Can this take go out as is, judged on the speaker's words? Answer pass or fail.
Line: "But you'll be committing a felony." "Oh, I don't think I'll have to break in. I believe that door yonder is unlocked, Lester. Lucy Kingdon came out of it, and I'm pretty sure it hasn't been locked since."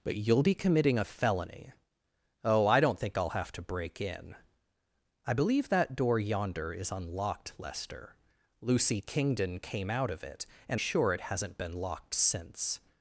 fail